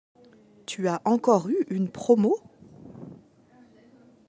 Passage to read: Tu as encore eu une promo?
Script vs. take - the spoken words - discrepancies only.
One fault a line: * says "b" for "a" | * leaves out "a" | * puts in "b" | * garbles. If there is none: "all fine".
all fine